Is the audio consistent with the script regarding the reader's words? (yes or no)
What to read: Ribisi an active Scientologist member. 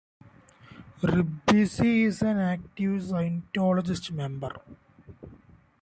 no